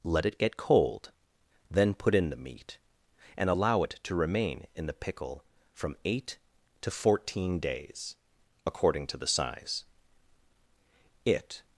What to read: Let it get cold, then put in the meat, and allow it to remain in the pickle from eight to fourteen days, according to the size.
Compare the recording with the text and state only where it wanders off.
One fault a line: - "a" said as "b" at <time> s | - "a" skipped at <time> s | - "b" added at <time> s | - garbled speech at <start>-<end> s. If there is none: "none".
- "It" added at 11.2 s